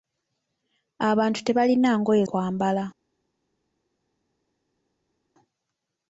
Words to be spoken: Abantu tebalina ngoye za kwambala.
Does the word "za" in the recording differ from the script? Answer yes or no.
yes